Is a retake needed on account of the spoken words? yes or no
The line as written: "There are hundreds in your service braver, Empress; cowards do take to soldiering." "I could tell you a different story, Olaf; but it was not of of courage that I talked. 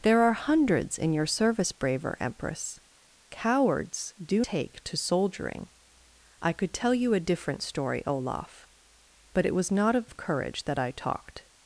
no